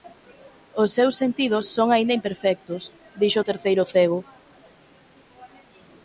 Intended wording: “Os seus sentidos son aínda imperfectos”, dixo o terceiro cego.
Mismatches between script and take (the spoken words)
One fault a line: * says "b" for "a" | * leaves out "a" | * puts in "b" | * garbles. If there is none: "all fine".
all fine